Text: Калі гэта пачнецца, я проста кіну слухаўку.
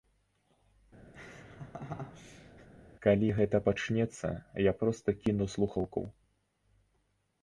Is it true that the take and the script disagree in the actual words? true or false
false